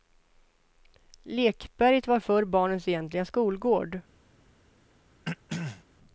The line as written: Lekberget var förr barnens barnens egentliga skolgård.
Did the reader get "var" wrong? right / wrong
right